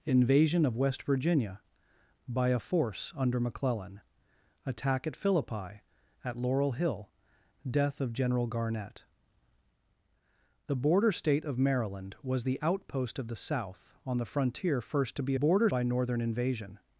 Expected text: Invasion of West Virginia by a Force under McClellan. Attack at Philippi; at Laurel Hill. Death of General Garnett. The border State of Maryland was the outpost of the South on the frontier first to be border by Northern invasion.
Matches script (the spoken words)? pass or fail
pass